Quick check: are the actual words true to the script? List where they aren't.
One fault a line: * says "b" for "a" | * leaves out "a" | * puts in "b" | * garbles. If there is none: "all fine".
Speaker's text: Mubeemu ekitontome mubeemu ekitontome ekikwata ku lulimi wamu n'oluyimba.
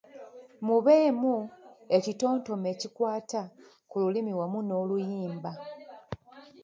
* leaves out "mubeemu ekitontome"